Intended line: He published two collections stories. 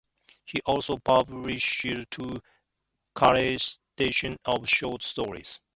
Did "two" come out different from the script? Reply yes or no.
no